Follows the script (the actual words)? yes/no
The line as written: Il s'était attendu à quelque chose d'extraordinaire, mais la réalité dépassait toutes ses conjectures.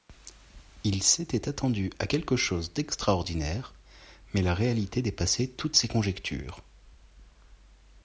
yes